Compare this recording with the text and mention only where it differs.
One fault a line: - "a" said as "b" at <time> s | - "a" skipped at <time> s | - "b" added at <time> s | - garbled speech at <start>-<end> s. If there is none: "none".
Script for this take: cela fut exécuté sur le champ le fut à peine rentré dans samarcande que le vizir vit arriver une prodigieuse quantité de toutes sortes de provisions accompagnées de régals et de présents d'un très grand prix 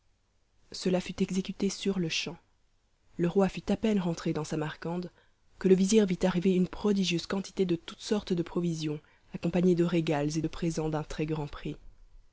- "roi" added at 3.3 s